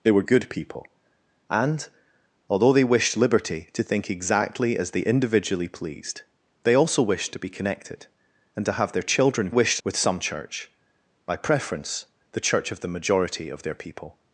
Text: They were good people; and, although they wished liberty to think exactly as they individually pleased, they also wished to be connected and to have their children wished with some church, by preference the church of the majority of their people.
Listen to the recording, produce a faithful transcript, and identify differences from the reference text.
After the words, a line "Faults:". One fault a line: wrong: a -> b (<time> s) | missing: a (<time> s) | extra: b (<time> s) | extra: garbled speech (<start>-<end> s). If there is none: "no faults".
They were good people; and, although they wished liberty to think exactly as they individually pleased, they also wished to be connected and to have their children wished with some church, by preference the church of the majority of their people.
Faults:
no faults